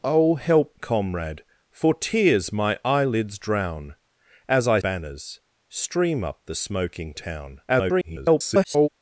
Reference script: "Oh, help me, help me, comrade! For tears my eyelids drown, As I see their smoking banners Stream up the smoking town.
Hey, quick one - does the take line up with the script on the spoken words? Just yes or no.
no